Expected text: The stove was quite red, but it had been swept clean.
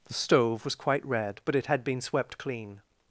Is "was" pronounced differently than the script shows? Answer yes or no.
no